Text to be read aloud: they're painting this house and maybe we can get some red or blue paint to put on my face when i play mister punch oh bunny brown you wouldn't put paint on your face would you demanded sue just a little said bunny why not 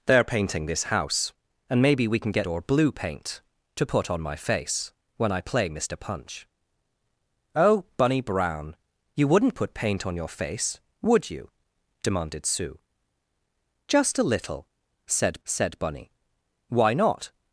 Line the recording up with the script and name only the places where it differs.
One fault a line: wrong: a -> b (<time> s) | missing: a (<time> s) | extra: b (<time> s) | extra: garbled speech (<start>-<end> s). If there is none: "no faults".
missing: some red (2.5 s)
extra: said (15.5 s)